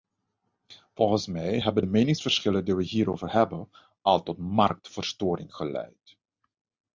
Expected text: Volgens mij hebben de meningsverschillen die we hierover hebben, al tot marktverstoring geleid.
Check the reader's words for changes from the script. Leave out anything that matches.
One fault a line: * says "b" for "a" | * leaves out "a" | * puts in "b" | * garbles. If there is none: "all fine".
all fine